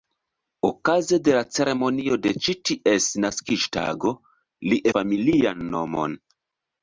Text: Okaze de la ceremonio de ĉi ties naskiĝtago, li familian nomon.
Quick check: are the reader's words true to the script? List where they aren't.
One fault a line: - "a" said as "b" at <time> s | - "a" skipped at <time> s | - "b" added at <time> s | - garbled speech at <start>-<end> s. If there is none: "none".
none